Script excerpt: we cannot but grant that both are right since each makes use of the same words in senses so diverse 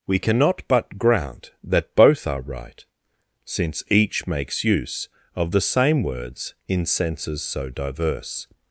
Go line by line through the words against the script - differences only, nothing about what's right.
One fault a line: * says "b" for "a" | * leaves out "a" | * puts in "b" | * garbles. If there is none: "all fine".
all fine